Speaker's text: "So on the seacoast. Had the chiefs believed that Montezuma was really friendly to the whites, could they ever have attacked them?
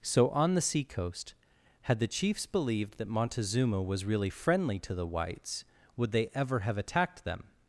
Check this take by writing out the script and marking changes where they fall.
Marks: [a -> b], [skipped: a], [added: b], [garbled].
"So on the seacoast. Had the chiefs believed that Montezuma was really friendly to the whites, [could -> would] they ever have attacked them?